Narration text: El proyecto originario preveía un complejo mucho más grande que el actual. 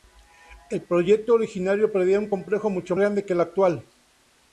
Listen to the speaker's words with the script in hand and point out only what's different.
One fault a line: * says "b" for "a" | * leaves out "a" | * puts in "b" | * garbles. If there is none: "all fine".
* leaves out "más"